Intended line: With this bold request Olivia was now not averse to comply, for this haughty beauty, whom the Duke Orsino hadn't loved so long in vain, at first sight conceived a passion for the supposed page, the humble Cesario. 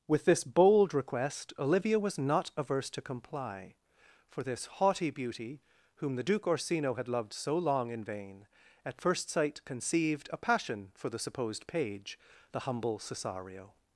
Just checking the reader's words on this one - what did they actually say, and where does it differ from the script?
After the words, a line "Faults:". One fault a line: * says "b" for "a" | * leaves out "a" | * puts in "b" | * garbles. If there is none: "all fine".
With this bold request Olivia was not averse to comply, for this haughty beauty, whom the Duke Orsino had loved so long in vain, at first sight conceived a passion for the supposed page, the humble Cesario.
Faults:
* leaves out "now"
* says "had" for "hadn't"